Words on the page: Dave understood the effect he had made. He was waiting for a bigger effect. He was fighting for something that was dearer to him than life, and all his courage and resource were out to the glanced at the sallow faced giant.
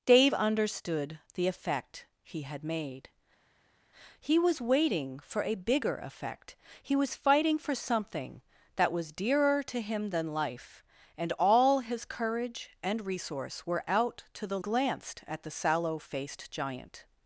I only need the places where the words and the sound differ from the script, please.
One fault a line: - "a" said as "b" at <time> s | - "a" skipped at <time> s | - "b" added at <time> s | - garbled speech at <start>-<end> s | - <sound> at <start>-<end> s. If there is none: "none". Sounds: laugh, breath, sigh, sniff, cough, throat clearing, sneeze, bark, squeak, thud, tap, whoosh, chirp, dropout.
none